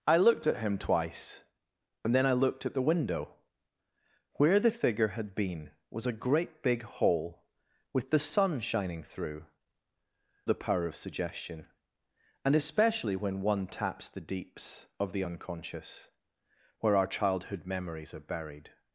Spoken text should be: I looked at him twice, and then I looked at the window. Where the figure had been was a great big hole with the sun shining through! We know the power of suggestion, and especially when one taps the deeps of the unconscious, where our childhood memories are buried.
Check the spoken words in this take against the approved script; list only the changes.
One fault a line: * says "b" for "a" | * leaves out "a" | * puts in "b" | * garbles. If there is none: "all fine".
* leaves out "We know"